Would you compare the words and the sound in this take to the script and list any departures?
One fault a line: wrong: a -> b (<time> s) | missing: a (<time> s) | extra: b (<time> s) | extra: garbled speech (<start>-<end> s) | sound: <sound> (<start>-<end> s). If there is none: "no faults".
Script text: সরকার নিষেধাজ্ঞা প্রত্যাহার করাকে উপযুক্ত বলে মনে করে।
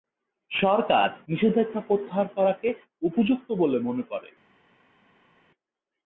no faults